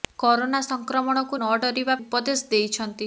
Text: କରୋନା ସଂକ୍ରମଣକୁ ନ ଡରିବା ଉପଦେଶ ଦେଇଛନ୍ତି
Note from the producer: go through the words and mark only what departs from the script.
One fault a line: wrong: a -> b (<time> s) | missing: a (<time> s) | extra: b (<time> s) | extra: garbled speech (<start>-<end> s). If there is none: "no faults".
no faults